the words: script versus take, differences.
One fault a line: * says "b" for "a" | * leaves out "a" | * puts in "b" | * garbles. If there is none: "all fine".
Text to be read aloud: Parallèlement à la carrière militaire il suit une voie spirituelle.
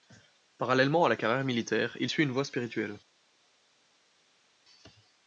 all fine